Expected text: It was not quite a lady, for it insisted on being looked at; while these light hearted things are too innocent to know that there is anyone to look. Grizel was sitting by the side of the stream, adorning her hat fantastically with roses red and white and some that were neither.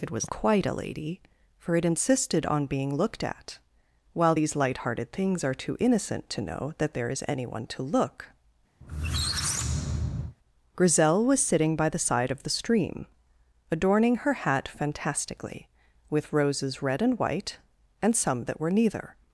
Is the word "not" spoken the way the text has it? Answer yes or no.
no